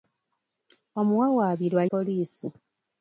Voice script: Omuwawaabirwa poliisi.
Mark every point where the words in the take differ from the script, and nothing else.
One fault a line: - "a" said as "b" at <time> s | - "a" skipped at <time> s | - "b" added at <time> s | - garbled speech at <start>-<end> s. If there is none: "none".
none